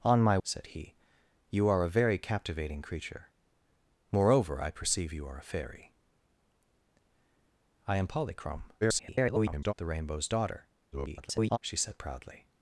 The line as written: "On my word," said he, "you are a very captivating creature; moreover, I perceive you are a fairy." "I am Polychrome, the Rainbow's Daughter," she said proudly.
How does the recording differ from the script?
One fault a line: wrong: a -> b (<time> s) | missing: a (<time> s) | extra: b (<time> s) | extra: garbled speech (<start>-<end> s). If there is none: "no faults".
missing: word (0.4 s)
extra: garbled speech (8.8-9.7 s)
extra: garbled speech (10.9-11.6 s)